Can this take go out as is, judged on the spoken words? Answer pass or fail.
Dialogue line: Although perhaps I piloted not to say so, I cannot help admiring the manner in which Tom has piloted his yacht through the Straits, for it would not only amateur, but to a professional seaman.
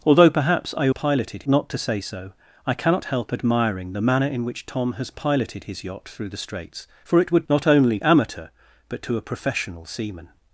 pass